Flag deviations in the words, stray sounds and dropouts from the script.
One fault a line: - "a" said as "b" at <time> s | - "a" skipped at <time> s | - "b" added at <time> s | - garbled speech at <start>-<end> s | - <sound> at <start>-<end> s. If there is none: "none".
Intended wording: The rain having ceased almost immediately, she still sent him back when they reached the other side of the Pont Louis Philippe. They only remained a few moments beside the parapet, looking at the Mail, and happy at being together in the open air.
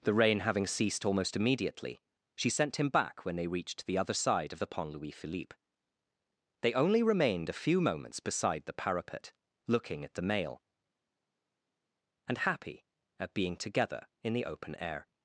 - "still" skipped at 2.5 s